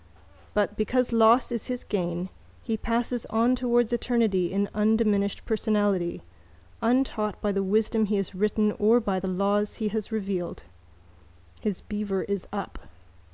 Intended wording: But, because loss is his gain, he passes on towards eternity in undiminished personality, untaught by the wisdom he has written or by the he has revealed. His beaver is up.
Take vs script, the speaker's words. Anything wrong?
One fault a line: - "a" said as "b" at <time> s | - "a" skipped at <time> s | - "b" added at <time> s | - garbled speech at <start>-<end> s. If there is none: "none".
- "laws" added at 9.3 s